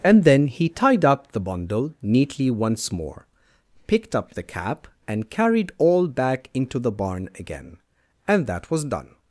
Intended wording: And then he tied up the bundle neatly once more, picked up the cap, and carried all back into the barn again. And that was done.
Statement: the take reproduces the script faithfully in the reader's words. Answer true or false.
true